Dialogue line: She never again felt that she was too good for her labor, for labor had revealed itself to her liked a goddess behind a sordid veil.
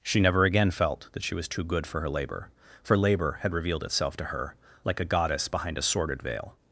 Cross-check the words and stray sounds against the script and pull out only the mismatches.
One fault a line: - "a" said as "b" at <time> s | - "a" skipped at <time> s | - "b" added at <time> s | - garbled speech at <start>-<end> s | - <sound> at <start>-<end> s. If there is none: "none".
- "liked" said as "like" at 4.8 s